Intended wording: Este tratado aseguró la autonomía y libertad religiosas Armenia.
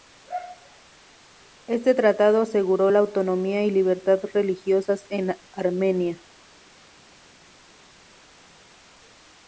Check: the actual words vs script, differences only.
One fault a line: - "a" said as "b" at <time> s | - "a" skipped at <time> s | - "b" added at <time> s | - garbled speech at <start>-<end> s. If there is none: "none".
- "en" added at 5.1 s